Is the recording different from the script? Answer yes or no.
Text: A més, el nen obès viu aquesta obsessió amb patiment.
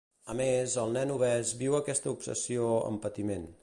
no